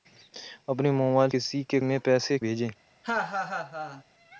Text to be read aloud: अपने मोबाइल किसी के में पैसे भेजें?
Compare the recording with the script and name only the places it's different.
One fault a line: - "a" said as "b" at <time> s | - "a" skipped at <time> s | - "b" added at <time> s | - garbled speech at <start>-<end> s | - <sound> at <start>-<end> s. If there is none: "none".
- laugh at 3.0-4.0 s